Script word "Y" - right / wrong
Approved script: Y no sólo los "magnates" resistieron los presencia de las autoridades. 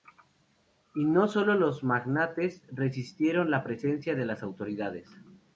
right